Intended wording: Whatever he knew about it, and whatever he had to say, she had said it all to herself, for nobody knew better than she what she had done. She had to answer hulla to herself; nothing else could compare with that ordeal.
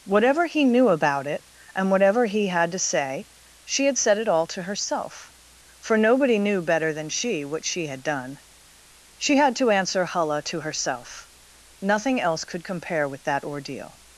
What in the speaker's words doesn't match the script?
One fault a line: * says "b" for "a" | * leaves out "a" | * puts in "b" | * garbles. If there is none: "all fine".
all fine